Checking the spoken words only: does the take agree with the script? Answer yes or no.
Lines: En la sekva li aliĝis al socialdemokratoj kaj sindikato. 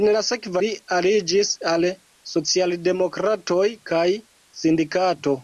yes